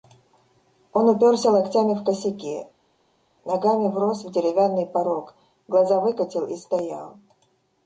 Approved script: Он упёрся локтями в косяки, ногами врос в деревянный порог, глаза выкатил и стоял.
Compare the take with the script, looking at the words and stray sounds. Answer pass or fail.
pass